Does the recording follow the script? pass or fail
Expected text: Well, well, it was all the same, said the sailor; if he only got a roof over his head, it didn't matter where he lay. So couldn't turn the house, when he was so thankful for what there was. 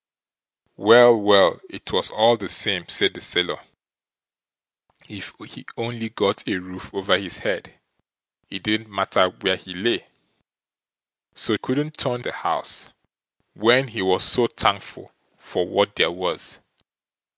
pass